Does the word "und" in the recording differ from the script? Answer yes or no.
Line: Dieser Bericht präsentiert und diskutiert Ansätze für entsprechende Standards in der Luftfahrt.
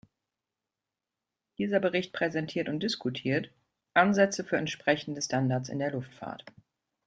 no